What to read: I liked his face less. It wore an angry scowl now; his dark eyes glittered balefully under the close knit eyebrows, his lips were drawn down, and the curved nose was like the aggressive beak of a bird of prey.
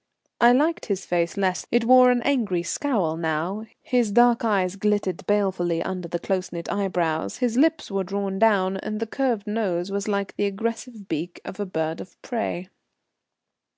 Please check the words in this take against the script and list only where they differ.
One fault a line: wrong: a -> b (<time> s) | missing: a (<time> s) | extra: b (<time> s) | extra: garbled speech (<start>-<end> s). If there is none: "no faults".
no faults